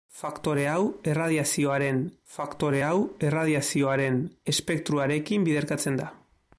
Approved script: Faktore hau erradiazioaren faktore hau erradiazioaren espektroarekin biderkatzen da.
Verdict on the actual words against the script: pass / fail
pass